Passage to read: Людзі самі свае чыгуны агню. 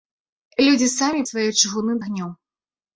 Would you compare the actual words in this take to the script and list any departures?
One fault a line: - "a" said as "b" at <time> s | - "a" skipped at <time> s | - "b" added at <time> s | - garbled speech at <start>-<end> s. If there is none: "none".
none